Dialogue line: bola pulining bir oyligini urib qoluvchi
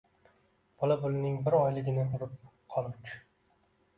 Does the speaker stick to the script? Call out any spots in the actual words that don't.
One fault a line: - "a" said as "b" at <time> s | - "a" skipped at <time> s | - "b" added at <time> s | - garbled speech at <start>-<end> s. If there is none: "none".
none